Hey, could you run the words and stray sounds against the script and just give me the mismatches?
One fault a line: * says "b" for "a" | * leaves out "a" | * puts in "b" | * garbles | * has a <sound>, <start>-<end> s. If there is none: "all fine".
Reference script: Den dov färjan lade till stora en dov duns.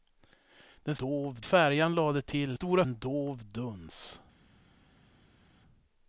all fine